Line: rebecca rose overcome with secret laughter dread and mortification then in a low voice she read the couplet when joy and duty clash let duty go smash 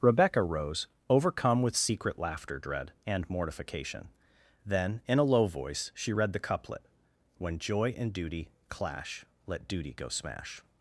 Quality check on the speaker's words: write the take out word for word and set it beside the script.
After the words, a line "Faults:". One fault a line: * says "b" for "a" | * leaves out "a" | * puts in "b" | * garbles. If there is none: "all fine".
rebecca rose overcome with secret laughter dread and mortification then in a low voice she read the couplet when joy and duty clash let duty go smash
Faults:
all fine